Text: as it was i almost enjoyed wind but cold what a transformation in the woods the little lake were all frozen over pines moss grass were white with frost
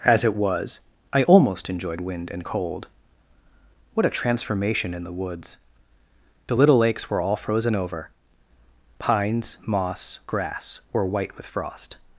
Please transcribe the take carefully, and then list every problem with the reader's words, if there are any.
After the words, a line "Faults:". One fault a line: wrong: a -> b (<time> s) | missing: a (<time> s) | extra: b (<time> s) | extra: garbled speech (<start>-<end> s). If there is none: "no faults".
as it was i almost enjoyed wind and cold what a transformation in the woods the little lakes were all frozen over pines moss grass were white with frost
Faults:
wrong: but -> and (2.3 s)
wrong: lake -> lakes (6.8 s)